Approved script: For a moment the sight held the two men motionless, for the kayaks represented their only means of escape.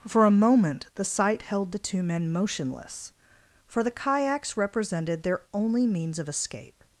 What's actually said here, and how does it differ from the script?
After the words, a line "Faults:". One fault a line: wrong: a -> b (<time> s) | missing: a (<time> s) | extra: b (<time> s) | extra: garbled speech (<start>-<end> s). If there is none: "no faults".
For a moment the sight held the two men motionless, for the kayaks represented their only means of escape.
Faults:
no faults